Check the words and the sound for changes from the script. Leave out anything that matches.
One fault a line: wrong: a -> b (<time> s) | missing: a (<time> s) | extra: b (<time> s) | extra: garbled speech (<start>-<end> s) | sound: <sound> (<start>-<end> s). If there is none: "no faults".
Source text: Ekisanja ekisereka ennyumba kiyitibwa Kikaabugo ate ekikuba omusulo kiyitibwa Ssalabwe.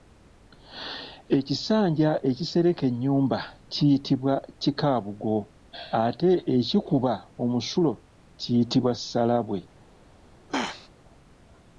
sound: throat clearing (10.5-10.9 s)